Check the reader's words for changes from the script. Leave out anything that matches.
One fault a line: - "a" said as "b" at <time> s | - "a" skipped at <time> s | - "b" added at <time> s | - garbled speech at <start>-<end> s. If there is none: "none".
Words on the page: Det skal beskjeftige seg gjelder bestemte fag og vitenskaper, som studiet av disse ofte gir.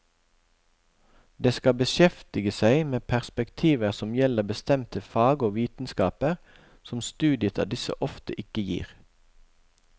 - "med perspektiver som" added at 2.9 s
- "ikke" added at 8.4 s